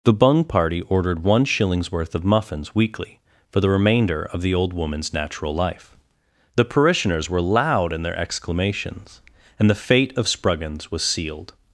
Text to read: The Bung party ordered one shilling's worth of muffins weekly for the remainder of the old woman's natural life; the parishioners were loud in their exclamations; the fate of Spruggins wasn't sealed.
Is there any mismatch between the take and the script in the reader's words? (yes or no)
yes